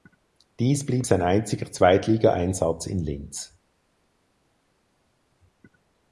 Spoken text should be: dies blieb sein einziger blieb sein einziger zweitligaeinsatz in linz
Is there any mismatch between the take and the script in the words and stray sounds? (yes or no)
yes